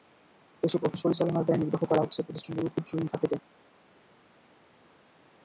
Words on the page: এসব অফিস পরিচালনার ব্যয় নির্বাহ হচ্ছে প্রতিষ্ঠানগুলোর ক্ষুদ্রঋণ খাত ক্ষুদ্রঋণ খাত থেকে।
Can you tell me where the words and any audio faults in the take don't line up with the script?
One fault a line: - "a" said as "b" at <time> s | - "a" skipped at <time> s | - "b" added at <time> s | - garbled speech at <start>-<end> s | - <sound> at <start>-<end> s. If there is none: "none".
- "করা" added at 1.8 s
- "ক্ষুদ্রঋণ খাত" skipped at 3.2 s